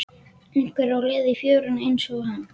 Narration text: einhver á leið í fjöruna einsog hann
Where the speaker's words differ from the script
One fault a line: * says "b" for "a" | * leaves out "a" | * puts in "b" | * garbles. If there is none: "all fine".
all fine